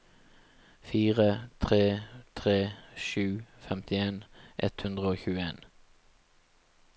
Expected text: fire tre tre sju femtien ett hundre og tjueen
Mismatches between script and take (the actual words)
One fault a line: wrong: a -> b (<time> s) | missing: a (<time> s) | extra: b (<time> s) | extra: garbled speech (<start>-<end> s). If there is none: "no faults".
no faults